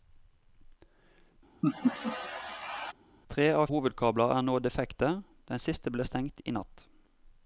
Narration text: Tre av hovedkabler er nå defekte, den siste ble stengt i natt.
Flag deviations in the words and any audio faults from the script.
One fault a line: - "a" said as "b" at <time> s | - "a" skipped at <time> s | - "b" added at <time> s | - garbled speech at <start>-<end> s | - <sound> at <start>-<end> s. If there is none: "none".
- laugh at 1.6-2.9 s